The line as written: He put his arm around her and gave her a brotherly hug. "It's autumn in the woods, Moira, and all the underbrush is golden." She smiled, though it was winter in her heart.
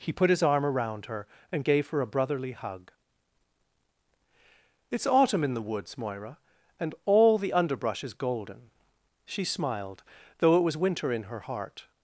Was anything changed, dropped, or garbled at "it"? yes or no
no